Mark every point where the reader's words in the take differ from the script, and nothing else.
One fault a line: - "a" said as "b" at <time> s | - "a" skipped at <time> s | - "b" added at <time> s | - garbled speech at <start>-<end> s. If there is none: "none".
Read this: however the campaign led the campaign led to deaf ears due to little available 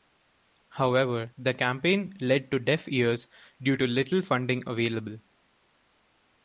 - "the campaign led" skipped at 2.5 s
- "funding" added at 4.2 s